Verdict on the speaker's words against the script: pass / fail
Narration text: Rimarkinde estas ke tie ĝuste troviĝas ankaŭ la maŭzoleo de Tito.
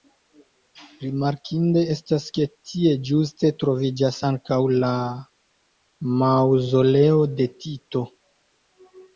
pass